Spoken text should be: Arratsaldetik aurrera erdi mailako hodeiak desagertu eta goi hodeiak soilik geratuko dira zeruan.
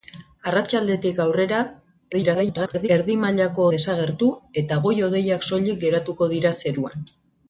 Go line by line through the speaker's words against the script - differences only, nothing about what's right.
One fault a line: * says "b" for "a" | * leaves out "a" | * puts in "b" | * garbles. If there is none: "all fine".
* garbles
* leaves out "hodeiak"